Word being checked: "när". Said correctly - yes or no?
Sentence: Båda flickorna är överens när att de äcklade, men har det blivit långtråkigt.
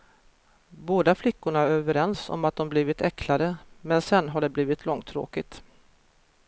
no